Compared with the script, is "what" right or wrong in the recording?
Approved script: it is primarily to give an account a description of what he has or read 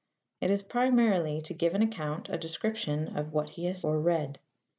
right